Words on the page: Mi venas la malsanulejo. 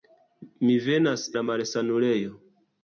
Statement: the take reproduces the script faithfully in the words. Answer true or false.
true